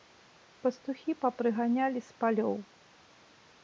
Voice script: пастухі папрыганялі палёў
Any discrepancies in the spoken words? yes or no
yes